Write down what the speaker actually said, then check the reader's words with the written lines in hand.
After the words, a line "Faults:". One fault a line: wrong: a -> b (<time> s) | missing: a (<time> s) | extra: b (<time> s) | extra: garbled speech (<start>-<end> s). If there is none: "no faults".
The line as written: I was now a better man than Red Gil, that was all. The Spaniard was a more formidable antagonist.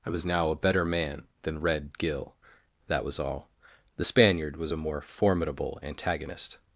I was now a better man than Red Gil, that was all. The Spaniard was a more formidable antagonist.
Faults:
no faults